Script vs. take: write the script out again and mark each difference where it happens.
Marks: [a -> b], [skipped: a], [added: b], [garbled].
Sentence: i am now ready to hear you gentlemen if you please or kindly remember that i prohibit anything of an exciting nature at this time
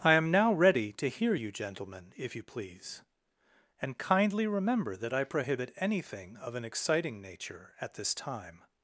i am now ready to hear you gentlemen if you please [or -> and] kindly remember that i prohibit anything of an exciting nature at this time